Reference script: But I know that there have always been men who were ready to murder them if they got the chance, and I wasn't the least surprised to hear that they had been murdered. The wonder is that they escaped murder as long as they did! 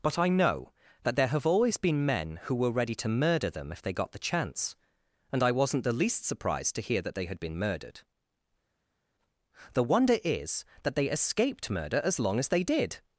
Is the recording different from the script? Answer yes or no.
no